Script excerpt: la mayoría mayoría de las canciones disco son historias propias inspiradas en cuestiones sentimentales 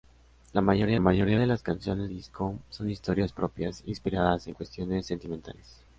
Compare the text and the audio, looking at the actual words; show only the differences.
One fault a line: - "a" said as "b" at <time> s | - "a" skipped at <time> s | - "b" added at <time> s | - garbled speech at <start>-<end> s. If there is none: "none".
none